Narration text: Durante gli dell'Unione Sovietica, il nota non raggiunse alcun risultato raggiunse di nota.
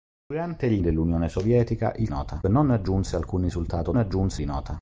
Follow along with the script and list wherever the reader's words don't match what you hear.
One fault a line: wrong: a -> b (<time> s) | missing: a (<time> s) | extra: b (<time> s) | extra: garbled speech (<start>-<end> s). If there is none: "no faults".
no faults